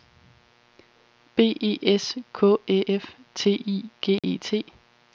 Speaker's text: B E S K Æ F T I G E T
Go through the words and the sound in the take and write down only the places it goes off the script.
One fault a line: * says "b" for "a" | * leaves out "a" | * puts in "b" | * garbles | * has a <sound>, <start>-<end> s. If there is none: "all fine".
* has a dropout, 4.2-4.2 s